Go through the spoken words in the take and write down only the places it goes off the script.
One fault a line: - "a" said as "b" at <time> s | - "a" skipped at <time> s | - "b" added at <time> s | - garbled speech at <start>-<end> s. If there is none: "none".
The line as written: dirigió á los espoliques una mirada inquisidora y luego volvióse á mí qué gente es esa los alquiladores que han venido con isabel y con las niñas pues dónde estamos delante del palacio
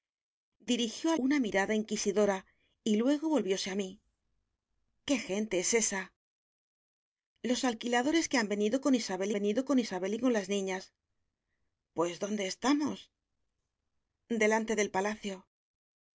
- "los espoliques" skipped at 1.1 s
- "venido con isabel" added at 9.4 s